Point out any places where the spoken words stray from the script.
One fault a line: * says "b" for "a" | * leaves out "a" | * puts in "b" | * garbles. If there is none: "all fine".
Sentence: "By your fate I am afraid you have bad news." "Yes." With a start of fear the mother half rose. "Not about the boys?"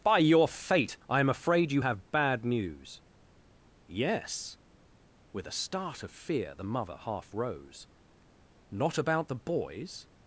all fine